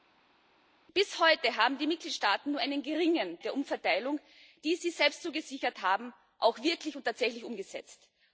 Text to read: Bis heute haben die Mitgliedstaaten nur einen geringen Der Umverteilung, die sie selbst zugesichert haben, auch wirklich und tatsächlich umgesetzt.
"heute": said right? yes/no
yes